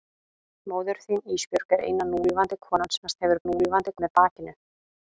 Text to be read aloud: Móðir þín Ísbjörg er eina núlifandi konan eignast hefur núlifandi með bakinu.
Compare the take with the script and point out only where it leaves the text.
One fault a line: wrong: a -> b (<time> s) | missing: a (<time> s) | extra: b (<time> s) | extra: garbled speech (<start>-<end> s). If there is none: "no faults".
no faults